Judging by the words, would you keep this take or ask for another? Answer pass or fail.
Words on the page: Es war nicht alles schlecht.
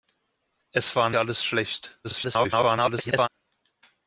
fail